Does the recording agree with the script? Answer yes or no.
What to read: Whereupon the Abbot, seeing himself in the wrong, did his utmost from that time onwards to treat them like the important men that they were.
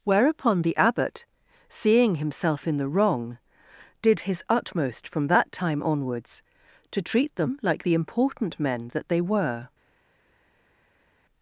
yes